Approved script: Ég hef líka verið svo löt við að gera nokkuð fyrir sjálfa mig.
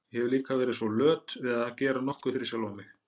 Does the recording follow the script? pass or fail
pass